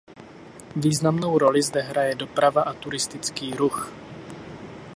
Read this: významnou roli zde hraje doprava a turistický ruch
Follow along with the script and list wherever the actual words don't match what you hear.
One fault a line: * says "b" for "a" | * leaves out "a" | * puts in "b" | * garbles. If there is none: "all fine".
all fine